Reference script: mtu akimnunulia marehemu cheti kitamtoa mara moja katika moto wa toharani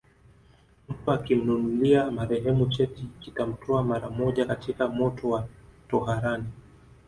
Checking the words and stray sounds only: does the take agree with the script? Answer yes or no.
yes